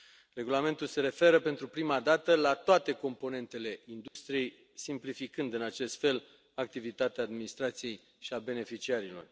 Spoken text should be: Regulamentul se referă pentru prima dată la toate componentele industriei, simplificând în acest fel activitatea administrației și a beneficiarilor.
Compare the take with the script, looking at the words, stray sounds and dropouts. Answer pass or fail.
fail